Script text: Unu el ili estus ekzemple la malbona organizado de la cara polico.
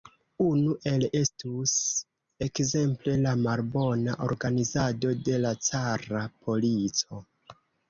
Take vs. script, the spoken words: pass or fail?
fail